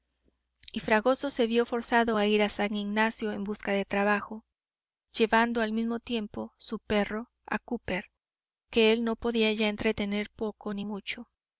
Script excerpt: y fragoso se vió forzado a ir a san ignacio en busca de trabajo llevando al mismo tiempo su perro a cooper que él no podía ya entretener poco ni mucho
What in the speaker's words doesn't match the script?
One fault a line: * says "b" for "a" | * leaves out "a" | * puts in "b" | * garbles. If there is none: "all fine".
all fine